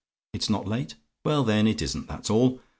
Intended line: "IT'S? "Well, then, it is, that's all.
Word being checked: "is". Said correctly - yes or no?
no